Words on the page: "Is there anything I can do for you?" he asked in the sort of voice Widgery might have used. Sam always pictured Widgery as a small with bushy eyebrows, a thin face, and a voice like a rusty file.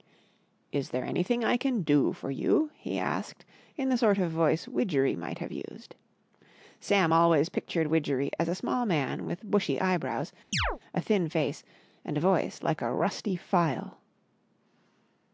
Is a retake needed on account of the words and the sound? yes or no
yes